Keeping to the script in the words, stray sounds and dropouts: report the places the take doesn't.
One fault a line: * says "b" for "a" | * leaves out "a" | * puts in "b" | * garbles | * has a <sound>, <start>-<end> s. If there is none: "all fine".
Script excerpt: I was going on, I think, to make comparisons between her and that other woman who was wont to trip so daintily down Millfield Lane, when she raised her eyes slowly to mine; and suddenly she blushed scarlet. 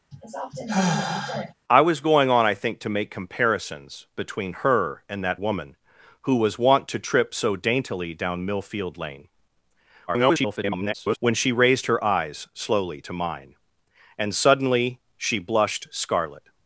* has a sigh, 0.1-1.5 s
* leaves out "other"
* garbles